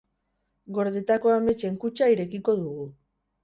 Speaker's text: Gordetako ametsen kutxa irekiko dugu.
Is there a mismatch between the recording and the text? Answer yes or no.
no